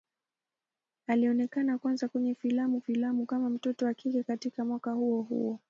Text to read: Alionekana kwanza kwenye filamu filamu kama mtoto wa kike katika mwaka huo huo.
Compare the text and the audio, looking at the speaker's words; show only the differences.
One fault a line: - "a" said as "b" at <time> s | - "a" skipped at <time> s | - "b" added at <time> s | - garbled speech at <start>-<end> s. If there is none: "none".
none